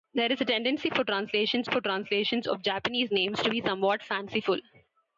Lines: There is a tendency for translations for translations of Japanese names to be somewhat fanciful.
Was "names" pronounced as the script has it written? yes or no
yes